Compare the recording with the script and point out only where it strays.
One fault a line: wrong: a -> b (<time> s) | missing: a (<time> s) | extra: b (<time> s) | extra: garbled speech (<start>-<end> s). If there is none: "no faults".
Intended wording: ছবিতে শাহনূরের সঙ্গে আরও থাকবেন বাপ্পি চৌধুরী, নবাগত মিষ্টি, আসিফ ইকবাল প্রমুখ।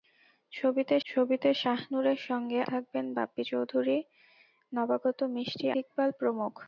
extra: ছবিতে (1.1 s)
missing: আরও (2.6 s)
missing: আসিফ (5.7 s)